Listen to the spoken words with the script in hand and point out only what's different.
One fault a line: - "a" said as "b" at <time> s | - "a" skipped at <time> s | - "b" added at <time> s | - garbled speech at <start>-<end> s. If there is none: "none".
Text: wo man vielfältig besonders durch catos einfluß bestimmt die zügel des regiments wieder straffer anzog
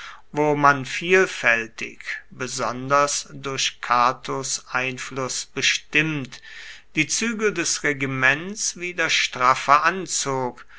none